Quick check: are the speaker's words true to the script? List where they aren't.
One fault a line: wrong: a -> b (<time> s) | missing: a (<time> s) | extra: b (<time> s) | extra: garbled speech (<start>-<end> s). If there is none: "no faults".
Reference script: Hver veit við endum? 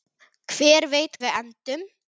no faults